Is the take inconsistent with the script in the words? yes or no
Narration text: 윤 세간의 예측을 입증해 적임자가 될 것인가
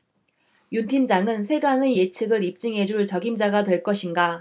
yes